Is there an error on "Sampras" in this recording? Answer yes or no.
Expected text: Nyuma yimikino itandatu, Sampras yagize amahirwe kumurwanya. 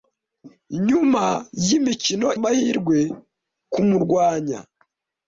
yes